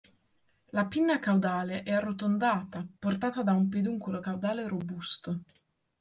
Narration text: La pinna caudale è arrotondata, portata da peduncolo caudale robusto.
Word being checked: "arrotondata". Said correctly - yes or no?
yes